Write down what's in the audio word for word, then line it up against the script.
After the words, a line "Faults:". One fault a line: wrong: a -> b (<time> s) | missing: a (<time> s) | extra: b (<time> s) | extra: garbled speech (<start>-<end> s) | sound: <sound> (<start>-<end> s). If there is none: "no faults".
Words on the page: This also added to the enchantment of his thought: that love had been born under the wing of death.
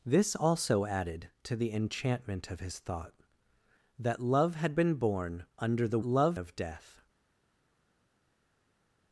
This also added to the enchantment of his thought: that love had been born under the love of death.
Faults:
wrong: wing -> love (6.0 s)